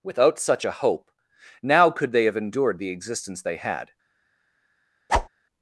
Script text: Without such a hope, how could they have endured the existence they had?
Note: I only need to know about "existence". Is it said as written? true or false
true